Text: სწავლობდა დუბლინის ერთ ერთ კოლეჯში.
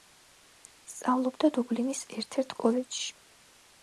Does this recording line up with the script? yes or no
yes